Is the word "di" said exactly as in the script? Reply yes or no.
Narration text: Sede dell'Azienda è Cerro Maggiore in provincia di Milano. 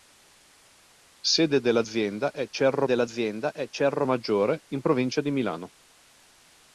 yes